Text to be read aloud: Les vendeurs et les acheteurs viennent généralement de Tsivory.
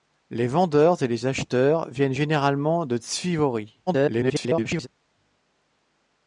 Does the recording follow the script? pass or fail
fail